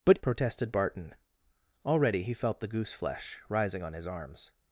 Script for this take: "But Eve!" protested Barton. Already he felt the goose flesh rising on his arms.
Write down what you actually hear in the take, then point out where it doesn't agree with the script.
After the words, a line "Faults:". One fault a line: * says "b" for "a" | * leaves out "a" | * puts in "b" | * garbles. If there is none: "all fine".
"But!" Protested Barton. Already he felt the goose flesh rising on his arms.
Faults:
* leaves out "Eve"